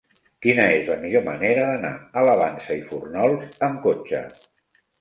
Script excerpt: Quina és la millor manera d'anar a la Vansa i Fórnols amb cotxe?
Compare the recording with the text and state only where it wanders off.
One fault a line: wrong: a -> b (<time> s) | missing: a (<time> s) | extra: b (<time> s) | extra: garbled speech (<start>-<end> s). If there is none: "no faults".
no faults